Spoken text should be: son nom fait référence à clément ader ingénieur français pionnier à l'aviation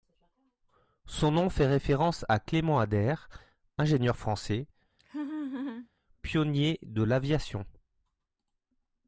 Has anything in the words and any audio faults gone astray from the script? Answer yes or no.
yes